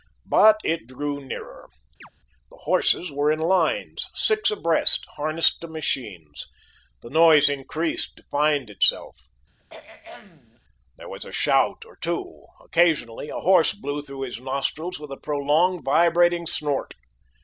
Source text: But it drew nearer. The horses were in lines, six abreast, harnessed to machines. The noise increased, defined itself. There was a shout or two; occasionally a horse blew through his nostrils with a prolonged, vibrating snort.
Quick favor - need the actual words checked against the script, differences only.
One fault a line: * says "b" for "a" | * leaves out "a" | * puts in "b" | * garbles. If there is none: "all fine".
all fine